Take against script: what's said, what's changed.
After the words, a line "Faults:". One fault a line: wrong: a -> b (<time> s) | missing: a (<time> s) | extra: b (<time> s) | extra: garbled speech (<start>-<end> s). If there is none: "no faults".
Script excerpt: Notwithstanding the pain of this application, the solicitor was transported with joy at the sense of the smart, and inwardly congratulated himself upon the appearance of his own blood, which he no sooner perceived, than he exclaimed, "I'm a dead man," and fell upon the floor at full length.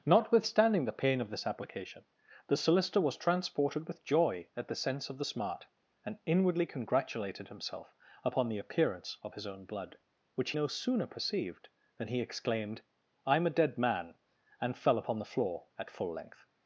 Notwithstanding the pain of this application, the solicitor was transported with joy at the sense of the smart, and inwardly congratulated himself upon the appearance of his own blood, which no sooner perceived, than he exclaimed, "I'm a dead man," and fell upon the floor at full length.
Faults:
missing: he (10.5 s)